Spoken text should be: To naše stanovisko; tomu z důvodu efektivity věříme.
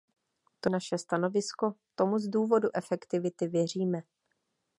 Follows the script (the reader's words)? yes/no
yes